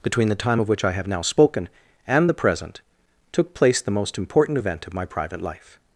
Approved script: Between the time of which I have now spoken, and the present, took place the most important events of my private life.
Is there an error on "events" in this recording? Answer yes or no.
yes